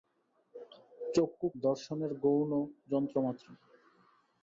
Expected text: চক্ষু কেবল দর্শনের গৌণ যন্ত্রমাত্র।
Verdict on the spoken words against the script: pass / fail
fail